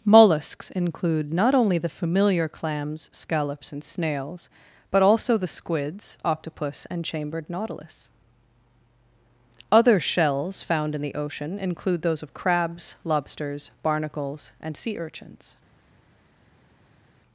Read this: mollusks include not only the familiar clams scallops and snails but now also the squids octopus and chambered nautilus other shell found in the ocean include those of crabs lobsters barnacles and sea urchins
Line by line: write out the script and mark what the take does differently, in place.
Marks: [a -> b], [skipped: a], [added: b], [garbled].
mollusks include not only the familiar clams scallops and snails but [skipped: now] also the squids octopus and chambered nautilus other [shell -> shells] found in the ocean include those of crabs lobsters barnacles and sea urchins